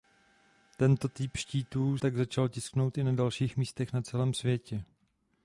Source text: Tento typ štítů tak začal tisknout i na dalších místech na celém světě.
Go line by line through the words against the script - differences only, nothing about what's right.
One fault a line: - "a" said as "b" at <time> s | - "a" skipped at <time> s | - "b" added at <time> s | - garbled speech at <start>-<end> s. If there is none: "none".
none